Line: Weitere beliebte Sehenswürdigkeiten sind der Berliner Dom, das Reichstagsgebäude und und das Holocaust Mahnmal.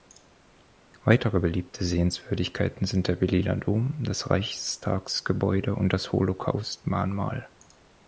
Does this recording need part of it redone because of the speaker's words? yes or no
yes